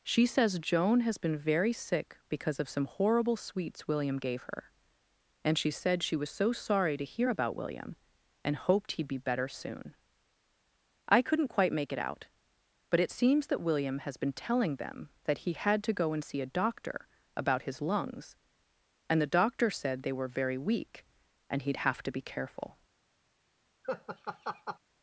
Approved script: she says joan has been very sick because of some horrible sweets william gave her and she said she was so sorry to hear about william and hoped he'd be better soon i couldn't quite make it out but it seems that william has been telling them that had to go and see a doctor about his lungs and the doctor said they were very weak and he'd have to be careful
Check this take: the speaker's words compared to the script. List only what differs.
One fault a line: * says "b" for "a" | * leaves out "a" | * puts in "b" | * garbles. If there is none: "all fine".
* puts in "he"